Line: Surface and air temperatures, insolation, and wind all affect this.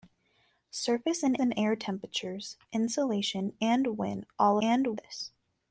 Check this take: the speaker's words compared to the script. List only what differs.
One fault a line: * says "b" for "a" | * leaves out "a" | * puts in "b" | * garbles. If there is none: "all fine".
* puts in "and"
* says "and" for "affect"